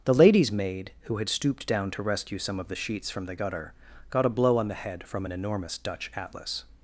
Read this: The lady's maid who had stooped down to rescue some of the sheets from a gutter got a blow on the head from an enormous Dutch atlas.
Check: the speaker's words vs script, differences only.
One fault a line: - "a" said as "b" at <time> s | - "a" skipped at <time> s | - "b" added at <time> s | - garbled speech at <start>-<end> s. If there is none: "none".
- "a" said as "the" at 3.3 s